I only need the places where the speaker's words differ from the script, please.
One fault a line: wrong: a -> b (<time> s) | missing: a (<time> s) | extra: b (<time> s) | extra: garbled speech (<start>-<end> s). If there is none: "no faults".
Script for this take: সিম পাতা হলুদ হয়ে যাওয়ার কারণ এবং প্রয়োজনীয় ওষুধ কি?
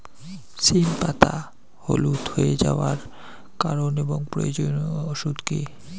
no faults